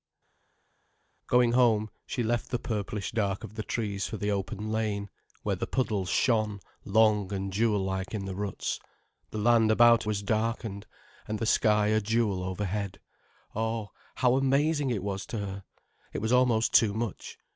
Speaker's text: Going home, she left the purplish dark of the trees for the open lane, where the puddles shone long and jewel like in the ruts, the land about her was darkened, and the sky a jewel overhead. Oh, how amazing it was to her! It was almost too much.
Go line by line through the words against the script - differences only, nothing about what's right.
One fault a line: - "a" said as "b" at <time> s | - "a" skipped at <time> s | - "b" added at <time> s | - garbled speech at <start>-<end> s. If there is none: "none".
- "her" skipped at 10.0 s